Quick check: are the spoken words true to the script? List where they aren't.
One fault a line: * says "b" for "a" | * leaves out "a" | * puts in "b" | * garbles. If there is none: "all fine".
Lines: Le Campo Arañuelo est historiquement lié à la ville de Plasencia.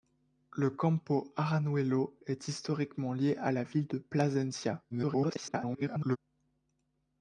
* garbles